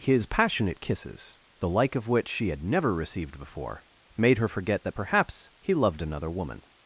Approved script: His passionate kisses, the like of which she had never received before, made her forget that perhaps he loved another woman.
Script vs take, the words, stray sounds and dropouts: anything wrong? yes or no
no